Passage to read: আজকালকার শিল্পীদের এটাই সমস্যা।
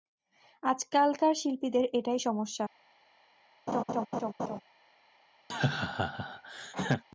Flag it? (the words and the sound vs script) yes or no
yes